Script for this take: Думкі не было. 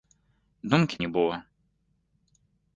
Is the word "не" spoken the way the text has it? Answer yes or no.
yes